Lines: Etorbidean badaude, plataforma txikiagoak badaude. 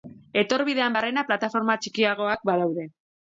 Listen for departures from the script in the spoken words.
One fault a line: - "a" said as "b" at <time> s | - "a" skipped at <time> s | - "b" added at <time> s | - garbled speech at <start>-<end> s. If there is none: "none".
- "badaude" said as "barrena" at 0.9 s